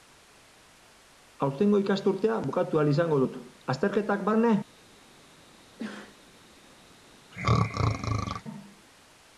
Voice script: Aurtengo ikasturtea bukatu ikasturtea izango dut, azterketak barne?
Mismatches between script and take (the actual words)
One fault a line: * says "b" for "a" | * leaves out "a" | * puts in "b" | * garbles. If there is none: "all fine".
* says "ahal" for "ikasturtea"